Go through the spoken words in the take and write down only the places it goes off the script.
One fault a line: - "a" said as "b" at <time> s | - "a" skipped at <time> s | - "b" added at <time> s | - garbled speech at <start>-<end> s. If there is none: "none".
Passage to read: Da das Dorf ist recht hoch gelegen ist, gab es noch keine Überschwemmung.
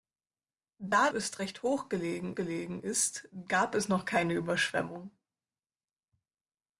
- "das Dorf" skipped at 1.1 s
- "gelegen" added at 2.3 s